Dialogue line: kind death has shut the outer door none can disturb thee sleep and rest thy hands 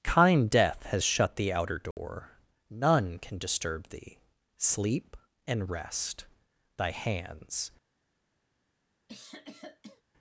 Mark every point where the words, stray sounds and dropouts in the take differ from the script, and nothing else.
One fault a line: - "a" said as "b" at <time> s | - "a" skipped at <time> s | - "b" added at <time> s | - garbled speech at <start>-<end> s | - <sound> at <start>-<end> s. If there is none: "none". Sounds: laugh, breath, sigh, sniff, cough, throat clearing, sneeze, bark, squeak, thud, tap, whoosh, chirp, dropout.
- dropout at 1.9-2.0 s
- cough at 9.1-10.0 s